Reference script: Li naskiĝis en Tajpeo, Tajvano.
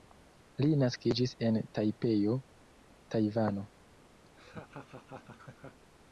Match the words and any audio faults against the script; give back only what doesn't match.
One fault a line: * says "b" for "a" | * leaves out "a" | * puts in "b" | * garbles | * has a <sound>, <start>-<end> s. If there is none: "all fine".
* has a laugh, 4.3-5.8 s